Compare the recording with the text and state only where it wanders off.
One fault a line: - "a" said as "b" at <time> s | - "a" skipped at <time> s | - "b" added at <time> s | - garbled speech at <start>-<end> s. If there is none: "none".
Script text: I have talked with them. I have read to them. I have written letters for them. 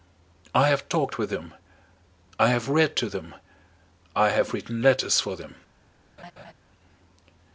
none